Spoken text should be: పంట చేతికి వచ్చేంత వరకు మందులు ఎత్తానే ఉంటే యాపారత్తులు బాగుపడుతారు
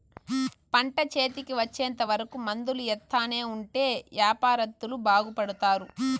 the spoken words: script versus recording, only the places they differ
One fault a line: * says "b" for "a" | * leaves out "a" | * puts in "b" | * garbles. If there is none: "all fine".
all fine